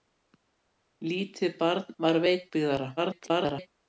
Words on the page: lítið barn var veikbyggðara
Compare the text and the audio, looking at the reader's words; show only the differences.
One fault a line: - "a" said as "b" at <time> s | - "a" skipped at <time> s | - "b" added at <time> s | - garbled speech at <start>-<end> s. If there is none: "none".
- garbled speech at 3.0-3.7 s